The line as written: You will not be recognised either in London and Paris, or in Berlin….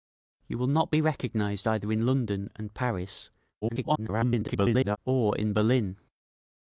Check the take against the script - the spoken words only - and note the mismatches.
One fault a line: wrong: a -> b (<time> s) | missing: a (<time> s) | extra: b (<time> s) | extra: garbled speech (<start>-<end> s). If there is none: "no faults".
extra: garbled speech (3.6-5.0 s)